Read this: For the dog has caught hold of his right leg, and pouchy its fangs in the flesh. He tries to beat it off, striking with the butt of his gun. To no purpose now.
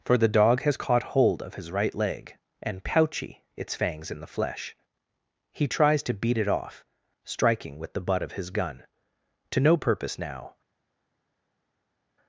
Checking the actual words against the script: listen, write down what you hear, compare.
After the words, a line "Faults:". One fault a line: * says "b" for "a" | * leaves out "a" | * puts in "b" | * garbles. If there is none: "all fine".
For the dog has caught hold of his right leg, and pouchy its fangs in the flesh. He tries to beat it off, striking with the butt of his gun. To no purpose now.
Faults:
all fine